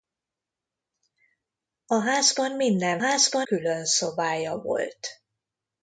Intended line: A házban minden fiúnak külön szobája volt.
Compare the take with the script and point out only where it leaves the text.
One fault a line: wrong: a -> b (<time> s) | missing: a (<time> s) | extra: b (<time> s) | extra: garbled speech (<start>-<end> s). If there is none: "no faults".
wrong: fiúnak -> házban (3.0 s)